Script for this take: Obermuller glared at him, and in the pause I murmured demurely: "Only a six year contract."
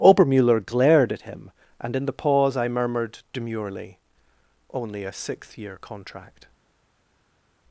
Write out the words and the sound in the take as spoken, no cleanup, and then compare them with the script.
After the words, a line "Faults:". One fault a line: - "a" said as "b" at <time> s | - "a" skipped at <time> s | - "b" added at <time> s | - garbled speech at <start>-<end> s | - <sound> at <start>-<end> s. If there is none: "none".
Obermuller glared at him, and in the pause I murmured demurely: "Only a sixth year contract."
Faults:
- "six" said as "sixth" at 5.1 s